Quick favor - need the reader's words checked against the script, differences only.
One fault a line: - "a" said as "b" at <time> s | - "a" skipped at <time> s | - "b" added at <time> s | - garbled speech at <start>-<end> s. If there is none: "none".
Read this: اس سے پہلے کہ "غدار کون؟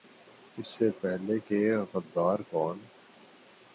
none